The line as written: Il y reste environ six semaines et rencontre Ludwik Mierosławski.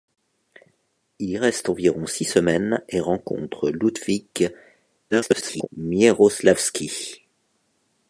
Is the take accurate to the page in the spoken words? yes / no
no